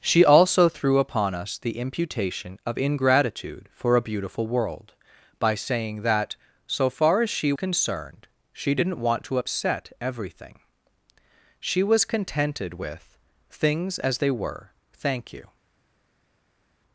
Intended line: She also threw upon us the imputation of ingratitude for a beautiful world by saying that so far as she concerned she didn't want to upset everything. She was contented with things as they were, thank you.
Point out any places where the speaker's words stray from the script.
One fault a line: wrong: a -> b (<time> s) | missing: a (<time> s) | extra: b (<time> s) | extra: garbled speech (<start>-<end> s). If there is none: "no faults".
no faults